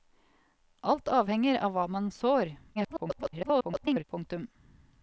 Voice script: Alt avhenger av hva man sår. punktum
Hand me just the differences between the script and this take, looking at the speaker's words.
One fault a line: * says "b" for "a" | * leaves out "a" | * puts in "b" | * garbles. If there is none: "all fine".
* garbles